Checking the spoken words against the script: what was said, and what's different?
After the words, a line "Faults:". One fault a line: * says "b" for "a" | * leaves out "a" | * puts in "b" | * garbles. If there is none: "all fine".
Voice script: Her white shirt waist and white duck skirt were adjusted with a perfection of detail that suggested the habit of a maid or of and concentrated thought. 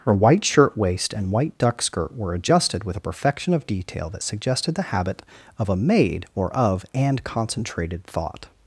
Her white shirt waist and white duck skirt were adjusted with a perfection of detail that suggested the habit of a maid or of and concentrated thought.
Faults:
all fine